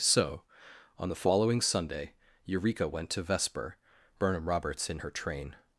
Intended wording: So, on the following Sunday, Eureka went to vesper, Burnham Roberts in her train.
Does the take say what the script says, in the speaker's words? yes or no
yes